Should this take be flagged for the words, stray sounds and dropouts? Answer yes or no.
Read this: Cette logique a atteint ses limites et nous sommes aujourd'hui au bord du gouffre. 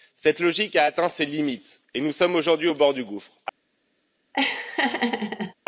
yes